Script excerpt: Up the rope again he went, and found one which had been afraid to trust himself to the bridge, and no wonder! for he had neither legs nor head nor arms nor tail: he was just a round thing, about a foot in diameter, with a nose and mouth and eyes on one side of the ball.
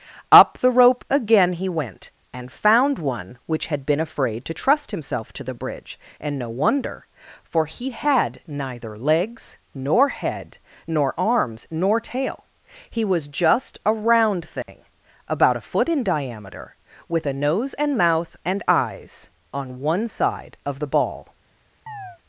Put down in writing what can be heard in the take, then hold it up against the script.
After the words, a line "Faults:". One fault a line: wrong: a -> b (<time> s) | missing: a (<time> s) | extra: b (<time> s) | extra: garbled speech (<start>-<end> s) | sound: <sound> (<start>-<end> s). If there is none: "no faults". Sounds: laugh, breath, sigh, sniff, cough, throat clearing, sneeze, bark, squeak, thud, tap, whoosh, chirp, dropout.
Up the rope again he went, and found one which had been afraid to trust himself to the bridge, and no wonder! for he had neither legs nor head nor arms nor tail: he was just a round thing, about a foot in diameter, with a nose and mouth and eyes on one side of the ball.
Faults:
sound: dropout (14.6-14.7 s)
sound: chirp (21.9-22.2 s)